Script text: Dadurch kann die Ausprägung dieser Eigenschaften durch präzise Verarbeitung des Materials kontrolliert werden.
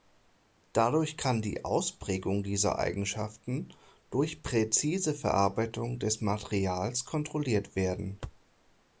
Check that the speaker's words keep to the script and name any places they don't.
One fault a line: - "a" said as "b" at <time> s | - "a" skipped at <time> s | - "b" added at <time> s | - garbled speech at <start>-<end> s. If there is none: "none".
none